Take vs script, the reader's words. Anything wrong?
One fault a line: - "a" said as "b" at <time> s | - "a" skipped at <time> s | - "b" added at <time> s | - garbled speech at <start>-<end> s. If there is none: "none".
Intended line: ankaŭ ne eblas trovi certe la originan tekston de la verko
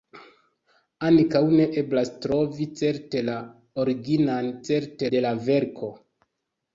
- "tekston" said as "certe" at 4.7 s